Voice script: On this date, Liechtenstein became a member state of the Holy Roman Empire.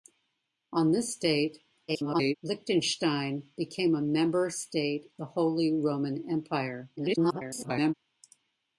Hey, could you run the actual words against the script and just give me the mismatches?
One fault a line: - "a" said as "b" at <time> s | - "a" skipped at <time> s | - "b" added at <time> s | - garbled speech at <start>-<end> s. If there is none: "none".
- garbled speech at 1.9-2.4 s
- "of" skipped at 5.1 s
- garbled speech at 7.0-7.9 s